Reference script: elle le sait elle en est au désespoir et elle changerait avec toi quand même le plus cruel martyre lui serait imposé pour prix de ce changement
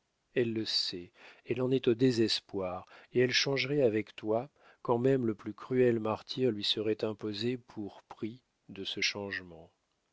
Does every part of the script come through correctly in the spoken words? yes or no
yes